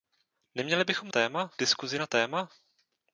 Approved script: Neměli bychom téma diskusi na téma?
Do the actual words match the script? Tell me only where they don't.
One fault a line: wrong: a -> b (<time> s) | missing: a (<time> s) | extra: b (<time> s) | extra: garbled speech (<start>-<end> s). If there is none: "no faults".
no faults